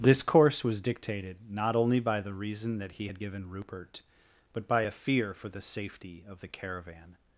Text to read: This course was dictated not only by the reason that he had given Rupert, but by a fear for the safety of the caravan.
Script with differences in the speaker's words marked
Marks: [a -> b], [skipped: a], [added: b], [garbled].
This course was dictated not only by the reason that he had given Rupert, but by a fear for the safety of the caravan.